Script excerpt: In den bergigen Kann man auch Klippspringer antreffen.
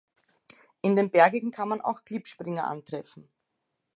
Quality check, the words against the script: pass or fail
pass